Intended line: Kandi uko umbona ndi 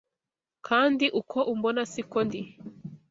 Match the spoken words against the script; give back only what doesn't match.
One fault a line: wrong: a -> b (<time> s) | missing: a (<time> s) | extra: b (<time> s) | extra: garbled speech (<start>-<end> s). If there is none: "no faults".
extra: siko (1.9 s)